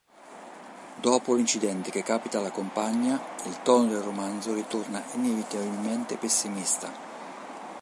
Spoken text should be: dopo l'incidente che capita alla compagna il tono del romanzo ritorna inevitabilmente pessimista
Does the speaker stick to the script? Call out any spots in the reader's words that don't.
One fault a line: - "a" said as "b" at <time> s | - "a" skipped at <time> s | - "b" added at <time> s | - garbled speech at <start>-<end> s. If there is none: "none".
none